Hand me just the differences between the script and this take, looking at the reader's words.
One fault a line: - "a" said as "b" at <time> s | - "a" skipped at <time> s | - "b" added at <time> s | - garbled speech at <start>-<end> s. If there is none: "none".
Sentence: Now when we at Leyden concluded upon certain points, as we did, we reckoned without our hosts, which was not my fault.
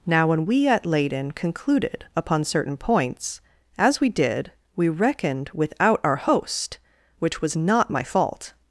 - "hosts" said as "host" at 6.2 s